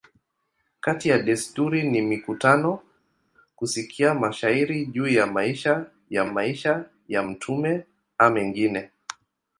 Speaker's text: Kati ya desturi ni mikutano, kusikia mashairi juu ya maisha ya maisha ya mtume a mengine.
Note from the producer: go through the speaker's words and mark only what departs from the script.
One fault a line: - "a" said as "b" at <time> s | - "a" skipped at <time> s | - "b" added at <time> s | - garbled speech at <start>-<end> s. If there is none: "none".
none